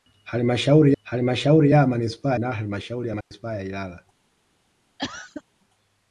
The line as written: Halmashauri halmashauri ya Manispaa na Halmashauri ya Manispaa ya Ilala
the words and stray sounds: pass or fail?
fail